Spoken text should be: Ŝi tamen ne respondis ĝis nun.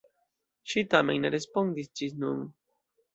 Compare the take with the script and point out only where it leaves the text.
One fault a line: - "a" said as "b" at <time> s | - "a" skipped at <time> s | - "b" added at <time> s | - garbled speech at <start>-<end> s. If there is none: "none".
none